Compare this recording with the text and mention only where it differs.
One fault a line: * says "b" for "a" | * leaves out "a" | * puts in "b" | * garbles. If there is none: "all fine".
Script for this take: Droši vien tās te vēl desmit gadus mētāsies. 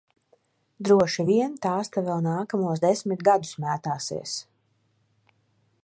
* puts in "nākamos"